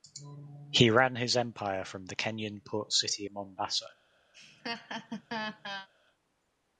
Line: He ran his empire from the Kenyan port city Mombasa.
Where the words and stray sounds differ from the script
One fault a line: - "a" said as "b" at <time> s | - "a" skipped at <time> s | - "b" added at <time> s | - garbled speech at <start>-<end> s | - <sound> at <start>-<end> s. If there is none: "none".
- laugh at 4.3-5.9 s